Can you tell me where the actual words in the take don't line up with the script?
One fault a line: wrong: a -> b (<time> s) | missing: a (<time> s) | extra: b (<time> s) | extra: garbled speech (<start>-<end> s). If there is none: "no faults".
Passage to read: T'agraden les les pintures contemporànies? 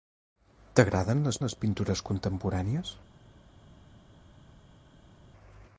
no faults